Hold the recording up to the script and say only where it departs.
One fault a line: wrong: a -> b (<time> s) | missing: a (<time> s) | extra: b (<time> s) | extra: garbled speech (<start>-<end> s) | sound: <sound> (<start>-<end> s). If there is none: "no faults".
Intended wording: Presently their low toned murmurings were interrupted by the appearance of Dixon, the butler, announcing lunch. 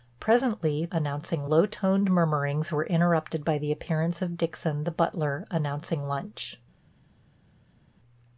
wrong: their -> announcing (0.9 s)